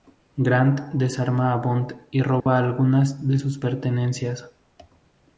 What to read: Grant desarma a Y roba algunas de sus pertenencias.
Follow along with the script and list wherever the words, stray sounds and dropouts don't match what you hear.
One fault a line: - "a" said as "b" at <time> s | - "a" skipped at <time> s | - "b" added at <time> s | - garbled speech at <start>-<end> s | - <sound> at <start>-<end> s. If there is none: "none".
- "Bond" added at 1.6 s
- dropout at 2.4-2.5 s